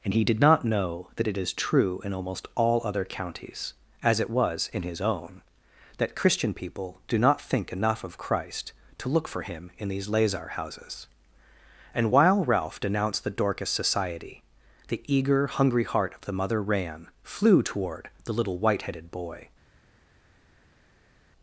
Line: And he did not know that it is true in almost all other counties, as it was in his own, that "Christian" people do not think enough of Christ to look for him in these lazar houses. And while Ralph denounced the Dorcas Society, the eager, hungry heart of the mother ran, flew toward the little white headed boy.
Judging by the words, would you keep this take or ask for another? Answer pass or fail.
pass